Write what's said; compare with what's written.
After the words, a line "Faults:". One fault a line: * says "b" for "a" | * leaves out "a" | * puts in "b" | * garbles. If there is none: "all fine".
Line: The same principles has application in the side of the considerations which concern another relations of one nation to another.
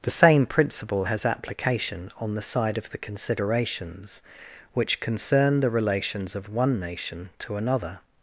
The same principle has application on the side of the considerations which concern the relations of one nation to another.
Faults:
* says "principle" for "principles"
* says "on" for "in"
* says "the" for "another"